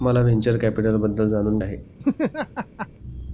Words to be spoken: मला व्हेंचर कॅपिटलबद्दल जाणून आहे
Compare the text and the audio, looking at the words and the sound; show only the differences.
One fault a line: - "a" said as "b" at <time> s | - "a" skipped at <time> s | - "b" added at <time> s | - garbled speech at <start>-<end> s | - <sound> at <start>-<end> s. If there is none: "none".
- laugh at 2.0-2.9 s